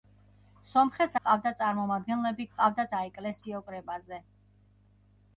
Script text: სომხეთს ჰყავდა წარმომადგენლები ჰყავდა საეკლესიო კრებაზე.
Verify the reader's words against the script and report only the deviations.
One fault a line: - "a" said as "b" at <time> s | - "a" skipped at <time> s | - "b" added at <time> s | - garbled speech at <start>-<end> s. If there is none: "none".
none